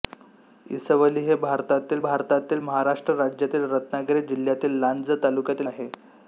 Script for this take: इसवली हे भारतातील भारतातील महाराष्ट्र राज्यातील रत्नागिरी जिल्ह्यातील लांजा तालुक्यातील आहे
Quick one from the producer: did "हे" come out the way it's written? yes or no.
yes